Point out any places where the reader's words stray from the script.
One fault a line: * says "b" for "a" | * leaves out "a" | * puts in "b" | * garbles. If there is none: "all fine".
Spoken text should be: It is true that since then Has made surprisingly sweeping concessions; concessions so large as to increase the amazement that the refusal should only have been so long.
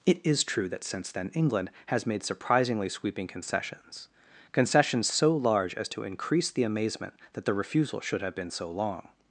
* puts in "England"
* leaves out "only"